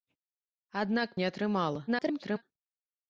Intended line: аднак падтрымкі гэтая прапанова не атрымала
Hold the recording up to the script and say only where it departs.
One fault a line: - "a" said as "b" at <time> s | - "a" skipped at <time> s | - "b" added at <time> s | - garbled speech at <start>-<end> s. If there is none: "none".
- "падтрымкі гэтая прапанова" skipped at 1.1 s
- garbled speech at 1.9-2.4 s